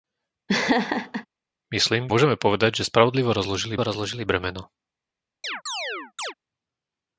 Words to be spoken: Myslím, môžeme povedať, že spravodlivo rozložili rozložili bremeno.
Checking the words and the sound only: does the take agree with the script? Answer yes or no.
no